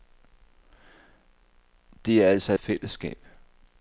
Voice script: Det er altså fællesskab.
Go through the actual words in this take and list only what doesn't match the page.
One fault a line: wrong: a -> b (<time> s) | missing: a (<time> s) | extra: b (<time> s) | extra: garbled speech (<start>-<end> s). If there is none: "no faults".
no faults